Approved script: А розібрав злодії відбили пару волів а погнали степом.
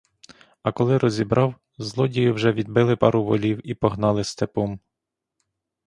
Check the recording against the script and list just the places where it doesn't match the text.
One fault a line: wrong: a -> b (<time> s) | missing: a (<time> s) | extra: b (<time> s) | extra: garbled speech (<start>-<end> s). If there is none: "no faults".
extra: коли (0.7 s)
extra: вже (2.3 s)
wrong: а -> і (3.6 s)